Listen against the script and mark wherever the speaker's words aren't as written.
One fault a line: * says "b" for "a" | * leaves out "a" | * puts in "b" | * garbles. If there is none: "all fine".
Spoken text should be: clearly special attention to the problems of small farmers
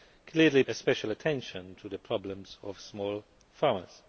all fine